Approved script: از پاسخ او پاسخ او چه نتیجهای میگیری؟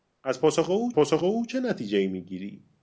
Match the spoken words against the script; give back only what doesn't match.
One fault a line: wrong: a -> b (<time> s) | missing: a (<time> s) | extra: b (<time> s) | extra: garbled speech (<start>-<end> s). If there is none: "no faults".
no faults